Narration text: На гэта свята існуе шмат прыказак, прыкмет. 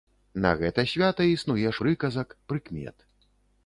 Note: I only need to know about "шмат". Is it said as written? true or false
false